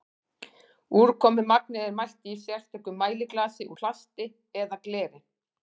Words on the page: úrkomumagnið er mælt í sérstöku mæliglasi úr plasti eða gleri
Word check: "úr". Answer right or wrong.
wrong